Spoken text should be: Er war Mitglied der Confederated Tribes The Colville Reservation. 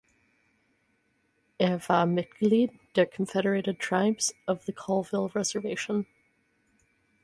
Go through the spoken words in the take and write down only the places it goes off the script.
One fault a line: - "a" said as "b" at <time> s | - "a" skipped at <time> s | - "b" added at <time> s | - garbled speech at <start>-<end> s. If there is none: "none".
- "Of" added at 4.5 s